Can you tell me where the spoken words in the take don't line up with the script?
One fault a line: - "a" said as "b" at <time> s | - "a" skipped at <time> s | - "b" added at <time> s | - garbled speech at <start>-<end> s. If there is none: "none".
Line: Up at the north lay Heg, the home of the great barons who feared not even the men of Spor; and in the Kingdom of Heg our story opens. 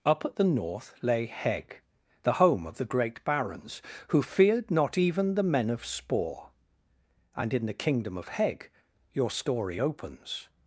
- "our" said as "your" at 9.1 s